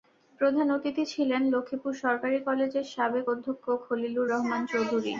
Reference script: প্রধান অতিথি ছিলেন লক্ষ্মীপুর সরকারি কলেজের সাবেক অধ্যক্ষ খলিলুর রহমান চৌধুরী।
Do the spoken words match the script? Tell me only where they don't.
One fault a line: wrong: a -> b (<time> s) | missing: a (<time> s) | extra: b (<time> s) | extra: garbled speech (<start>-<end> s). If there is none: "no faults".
no faults